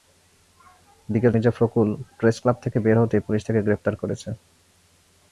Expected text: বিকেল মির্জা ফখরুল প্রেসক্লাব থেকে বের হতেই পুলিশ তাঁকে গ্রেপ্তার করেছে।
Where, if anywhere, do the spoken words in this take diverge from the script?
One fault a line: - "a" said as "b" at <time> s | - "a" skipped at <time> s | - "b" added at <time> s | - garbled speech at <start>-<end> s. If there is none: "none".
none